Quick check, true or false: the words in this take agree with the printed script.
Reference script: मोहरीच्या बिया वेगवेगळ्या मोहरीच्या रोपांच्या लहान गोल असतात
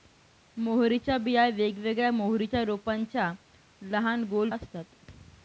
true